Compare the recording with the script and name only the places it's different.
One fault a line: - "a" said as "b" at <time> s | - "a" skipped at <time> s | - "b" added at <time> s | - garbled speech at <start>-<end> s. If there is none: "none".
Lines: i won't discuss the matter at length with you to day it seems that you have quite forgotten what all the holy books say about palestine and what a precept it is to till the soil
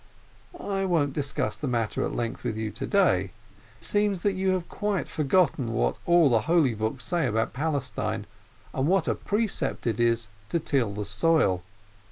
- "it" skipped at 3.3 s